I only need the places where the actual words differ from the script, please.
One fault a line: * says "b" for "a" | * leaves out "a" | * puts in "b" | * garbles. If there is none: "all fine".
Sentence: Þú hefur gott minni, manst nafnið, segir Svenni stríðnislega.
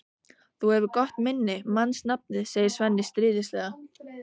all fine